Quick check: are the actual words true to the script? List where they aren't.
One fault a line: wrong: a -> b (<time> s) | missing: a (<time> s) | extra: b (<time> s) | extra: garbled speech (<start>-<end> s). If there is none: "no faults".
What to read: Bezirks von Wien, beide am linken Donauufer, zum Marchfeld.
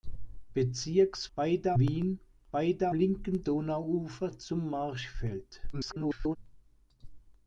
wrong: von -> beide (1.3 s)
missing: am (2.9 s)
extra: garbled speech (5.7-6.4 s)